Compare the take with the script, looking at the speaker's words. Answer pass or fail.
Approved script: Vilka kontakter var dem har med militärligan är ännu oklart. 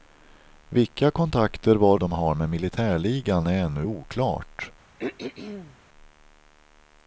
pass